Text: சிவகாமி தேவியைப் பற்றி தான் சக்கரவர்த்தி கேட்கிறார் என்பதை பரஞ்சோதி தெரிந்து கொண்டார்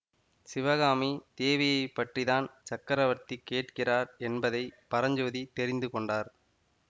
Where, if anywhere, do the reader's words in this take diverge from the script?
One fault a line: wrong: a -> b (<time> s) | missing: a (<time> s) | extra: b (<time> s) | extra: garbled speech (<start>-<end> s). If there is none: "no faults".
no faults